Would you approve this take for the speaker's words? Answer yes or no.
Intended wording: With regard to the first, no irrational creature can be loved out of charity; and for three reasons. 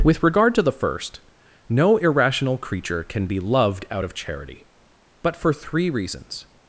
no